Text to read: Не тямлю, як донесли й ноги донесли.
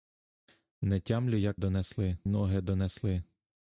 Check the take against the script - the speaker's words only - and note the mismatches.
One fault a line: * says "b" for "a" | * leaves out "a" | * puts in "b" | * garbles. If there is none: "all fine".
all fine